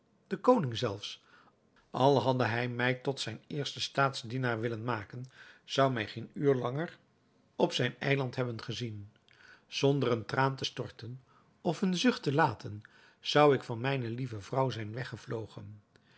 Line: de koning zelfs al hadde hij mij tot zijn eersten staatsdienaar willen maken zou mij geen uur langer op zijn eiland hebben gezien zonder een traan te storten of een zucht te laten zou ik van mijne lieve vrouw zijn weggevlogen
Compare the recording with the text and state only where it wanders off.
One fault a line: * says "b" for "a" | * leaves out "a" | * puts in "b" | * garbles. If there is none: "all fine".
all fine